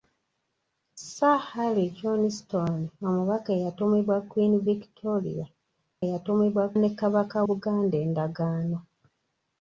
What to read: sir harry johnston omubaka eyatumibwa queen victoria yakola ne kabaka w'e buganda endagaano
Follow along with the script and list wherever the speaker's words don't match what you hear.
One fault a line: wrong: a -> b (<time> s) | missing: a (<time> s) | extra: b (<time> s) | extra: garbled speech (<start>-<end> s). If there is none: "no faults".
wrong: yakola -> eyatumibwa (6.0 s)
missing: w'e (7.4 s)